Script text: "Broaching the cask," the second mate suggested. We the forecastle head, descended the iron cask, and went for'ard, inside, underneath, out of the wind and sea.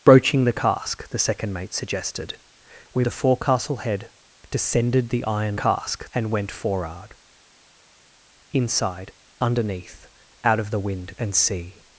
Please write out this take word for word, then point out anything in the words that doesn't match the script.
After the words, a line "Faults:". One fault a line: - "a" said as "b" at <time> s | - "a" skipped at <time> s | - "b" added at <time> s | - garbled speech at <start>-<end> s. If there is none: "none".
"Broaching the cask," the second mate suggested. We the forecastle head, descended the iron cask, and went for'ard, inside, underneath, out of the wind and sea.
Faults:
none